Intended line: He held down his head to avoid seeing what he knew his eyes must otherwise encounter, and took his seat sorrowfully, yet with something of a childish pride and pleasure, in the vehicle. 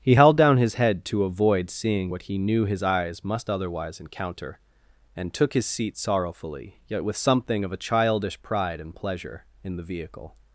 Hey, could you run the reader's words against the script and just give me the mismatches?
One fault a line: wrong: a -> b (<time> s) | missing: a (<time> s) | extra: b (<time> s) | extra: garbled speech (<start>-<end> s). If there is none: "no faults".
no faults